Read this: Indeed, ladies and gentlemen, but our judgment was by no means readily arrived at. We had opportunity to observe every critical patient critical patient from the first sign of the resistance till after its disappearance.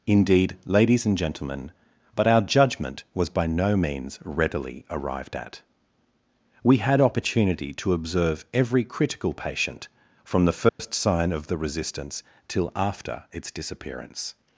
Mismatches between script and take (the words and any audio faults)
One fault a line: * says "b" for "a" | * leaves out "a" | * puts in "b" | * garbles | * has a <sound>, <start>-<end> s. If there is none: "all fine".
* leaves out "critical patient"
* has a dropout, 10.7-10.8 s